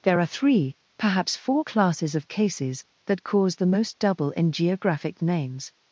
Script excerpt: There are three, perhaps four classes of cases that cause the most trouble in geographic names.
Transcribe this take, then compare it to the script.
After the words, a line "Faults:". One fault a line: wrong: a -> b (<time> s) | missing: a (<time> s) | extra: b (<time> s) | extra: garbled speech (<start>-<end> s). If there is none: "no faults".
There are three, perhaps four classes of cases that cause the most double in geographic names.
Faults:
wrong: trouble -> double (4.0 s)